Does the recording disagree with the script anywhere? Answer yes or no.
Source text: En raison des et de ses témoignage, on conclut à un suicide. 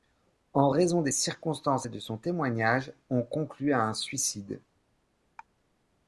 yes